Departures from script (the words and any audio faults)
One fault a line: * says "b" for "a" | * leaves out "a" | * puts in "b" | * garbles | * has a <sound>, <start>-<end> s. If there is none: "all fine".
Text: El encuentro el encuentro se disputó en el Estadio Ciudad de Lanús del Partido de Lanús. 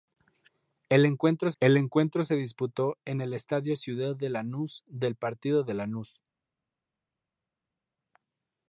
all fine